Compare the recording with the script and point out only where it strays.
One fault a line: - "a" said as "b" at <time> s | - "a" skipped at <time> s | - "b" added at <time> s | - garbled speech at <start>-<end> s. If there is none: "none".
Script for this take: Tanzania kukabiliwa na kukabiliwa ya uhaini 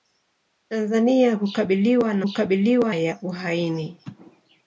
none